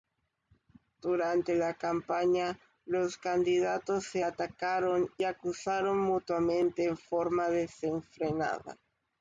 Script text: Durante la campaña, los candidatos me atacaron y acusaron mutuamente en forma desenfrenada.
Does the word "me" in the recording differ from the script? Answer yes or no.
yes